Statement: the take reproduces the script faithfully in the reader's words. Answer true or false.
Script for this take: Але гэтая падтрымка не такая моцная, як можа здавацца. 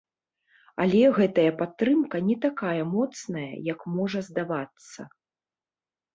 true